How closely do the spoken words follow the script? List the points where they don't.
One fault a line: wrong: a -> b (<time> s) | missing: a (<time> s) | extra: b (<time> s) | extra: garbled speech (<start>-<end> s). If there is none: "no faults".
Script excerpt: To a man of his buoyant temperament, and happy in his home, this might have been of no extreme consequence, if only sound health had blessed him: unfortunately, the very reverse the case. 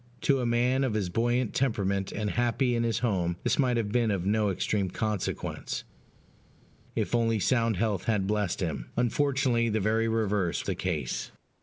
no faults